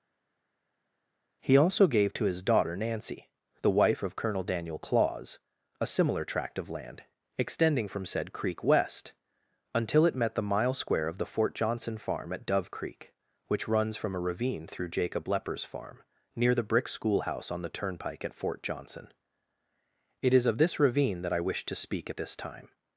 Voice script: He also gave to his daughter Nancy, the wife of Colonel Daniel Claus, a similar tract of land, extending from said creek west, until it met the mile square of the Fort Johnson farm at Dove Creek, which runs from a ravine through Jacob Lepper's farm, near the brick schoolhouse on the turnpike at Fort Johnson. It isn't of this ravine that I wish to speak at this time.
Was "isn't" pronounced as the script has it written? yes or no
no